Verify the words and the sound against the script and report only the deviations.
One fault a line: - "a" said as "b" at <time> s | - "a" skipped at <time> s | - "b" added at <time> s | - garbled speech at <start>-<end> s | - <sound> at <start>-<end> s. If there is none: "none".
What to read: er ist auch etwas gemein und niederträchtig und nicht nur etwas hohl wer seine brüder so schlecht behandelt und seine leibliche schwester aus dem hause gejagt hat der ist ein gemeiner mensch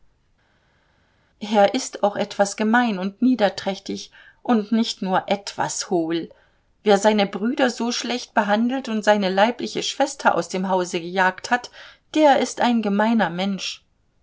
none